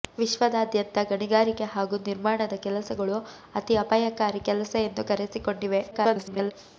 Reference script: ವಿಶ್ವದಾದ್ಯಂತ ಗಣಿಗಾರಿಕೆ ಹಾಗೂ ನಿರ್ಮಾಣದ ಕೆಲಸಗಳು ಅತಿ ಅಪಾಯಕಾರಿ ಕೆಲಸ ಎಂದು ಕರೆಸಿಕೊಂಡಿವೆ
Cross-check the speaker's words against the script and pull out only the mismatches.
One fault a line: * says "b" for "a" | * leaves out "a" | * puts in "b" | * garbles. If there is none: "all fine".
* garbles